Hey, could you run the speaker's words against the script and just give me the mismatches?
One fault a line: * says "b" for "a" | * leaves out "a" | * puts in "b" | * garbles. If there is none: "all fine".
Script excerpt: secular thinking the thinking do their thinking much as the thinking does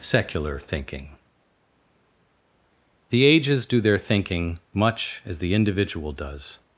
* says "ages" for "thinking"
* says "individual" for "thinking"